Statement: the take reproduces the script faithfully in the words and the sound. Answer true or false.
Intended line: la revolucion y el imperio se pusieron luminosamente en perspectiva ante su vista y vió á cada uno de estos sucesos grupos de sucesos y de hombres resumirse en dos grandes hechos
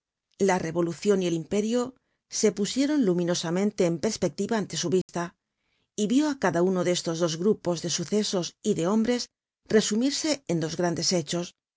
false